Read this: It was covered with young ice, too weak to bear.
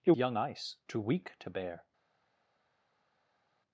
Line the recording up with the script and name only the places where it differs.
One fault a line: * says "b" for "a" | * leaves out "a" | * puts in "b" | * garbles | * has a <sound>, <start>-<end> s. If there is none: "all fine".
* leaves out "was covered with"